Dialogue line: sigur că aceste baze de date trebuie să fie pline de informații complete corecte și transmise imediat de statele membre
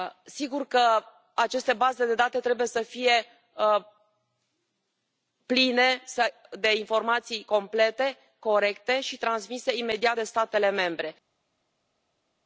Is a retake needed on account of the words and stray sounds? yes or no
no